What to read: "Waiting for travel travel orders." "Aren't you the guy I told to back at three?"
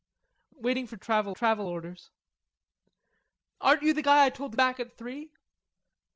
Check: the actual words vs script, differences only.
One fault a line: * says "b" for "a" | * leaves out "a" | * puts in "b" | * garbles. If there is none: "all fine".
all fine